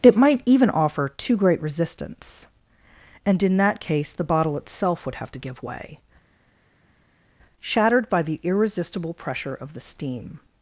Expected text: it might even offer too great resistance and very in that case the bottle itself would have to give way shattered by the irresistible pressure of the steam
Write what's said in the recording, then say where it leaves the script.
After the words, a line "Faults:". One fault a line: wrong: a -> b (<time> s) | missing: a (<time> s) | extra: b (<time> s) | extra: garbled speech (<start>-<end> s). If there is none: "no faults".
it might even offer too great resistance and in that case the bottle itself would have to give way shattered by the irresistible pressure of the steam
Faults:
missing: very (3.4 s)